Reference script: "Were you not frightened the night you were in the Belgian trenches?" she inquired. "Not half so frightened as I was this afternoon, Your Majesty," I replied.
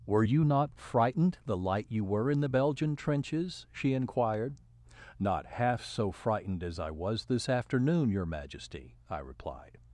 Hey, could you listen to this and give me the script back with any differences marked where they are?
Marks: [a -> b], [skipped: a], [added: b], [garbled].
"Were you not frightened the [night -> light] you were in the Belgian trenches?" she inquired. "Not half so frightened as I was this afternoon, Your Majesty," I replied.